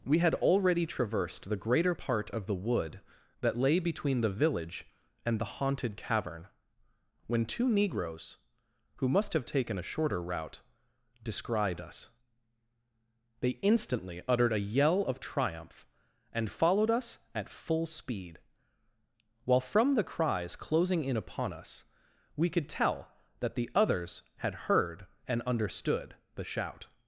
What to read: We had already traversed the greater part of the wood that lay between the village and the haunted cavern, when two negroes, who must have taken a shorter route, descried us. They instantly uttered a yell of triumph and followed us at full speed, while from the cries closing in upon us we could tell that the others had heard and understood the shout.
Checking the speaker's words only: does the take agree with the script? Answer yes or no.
yes